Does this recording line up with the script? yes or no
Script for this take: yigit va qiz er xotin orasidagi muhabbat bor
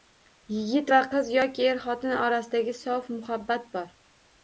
no